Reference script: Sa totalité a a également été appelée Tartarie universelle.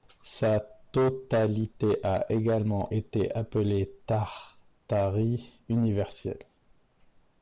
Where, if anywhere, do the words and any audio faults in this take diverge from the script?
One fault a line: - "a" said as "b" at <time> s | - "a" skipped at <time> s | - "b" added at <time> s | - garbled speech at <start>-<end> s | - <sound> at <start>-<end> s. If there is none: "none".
- "a" skipped at 2.2 s